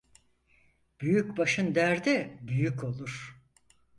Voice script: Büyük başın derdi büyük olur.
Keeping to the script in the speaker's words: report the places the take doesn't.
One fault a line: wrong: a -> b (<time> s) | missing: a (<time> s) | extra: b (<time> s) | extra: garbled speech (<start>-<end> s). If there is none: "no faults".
no faults